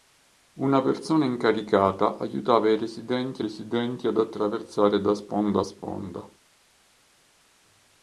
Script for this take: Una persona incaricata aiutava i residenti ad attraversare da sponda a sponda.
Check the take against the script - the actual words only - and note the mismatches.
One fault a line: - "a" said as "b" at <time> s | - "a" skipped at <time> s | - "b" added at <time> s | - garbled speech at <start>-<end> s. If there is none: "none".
- "residenti" added at 3.4 s